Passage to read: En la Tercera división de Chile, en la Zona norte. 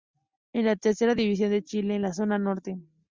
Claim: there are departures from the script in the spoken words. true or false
false